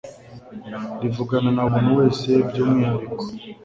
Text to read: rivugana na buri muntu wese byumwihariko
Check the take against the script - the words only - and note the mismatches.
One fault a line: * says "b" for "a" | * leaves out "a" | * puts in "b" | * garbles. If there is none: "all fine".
* leaves out "buri"